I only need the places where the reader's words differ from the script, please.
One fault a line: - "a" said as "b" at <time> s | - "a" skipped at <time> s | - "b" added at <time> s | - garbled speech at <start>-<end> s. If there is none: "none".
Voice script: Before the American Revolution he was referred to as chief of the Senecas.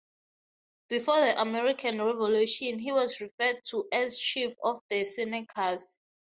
none